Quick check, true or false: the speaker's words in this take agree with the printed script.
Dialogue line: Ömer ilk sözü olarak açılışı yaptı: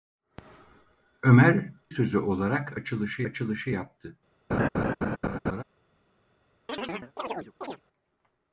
false